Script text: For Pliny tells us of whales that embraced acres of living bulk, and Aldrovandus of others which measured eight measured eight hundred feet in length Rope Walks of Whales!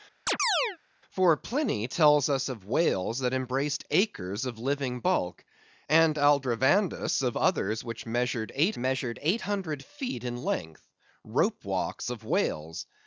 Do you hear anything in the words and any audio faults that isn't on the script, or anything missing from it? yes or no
yes